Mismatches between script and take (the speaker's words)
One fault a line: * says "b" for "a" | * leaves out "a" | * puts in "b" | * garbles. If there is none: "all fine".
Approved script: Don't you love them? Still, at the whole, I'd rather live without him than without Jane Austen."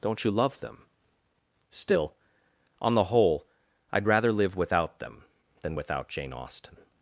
* says "on" for "at"
* says "them" for "him"